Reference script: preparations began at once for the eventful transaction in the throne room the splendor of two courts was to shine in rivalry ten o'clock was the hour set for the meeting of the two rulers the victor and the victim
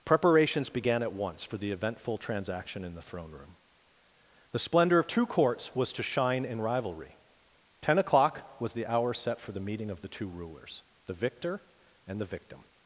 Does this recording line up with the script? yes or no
yes